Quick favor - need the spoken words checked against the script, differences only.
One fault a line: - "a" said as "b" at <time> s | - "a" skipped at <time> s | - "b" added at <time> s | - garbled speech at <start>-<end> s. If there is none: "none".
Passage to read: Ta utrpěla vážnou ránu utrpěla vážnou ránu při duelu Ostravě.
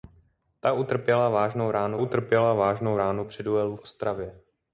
none